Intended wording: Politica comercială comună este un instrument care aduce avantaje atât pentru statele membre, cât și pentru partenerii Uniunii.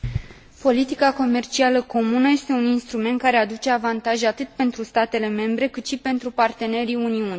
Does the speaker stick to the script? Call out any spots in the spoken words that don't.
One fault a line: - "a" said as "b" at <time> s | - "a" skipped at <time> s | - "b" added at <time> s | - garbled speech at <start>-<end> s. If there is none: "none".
none